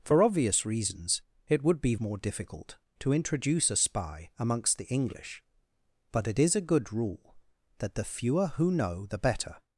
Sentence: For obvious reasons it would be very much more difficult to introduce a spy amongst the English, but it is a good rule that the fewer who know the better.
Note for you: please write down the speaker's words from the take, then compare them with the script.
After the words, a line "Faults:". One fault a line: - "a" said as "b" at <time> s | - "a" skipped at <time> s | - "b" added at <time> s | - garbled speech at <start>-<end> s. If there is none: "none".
For obvious reasons it would be more difficult to introduce a spy amongst the English, but it is a good rule that the fewer who know the better.
Faults:
- "very much" skipped at 1.9 s